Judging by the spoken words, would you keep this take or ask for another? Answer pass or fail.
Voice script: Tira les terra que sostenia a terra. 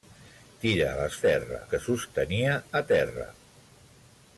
pass